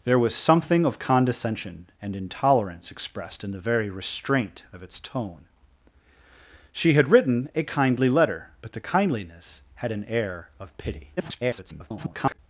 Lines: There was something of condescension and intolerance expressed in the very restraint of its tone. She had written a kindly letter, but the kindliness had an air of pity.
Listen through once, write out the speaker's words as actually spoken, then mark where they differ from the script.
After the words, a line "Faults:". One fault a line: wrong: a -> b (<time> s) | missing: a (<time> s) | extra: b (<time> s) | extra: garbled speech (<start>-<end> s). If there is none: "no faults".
There was something of condescension and intolerance expressed in the very restraint of its tone. She had written a kindly letter, but the kindliness had an air of pity. [garbled]
Faults:
extra: garbled speech (11.2-12.4 s)